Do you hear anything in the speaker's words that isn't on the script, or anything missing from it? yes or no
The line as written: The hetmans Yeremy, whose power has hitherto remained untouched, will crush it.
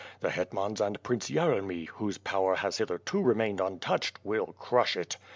yes